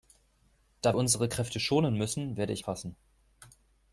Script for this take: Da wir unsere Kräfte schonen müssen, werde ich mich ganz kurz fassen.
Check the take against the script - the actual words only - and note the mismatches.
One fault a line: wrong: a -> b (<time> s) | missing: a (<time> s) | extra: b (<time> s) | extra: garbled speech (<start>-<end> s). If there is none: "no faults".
missing: wir (0.9 s)
missing: mich ganz kurz (2.6 s)